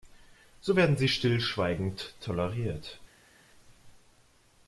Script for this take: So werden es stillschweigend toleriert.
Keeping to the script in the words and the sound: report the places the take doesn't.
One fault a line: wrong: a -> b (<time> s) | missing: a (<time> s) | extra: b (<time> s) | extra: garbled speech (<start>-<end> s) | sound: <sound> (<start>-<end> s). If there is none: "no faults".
wrong: es -> sie (1.0 s)